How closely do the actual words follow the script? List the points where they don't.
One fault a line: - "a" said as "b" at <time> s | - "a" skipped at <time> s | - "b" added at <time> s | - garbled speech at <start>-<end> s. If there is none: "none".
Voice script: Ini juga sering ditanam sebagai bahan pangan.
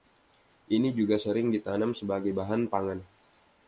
none